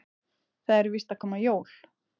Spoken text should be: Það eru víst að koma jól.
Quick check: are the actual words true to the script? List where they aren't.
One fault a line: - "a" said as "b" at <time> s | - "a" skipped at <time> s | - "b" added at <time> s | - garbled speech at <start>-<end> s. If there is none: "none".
none